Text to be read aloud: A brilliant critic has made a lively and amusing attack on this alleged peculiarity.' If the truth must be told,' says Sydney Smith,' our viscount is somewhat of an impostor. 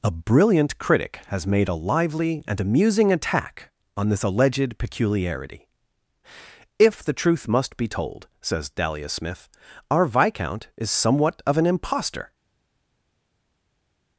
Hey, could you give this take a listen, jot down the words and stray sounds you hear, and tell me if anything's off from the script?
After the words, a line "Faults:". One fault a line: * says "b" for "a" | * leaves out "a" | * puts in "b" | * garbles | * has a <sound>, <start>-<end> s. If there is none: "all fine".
A brilliant critic has made a lively and amusing attack on this alleged peculiarity.' If the truth must be told,' says Dahlia Smith,' our viscount is somewhat of an impostor.
Faults:
* says "Dahlia" for "Sydney"